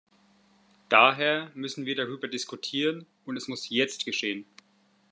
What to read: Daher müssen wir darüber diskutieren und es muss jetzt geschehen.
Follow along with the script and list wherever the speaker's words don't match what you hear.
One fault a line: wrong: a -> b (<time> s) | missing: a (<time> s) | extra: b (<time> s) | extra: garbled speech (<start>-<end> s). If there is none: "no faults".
no faults